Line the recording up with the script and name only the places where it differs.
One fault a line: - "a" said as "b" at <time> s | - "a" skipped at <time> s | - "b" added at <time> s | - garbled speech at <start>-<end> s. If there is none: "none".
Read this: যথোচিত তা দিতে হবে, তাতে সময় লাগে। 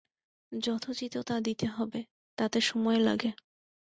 none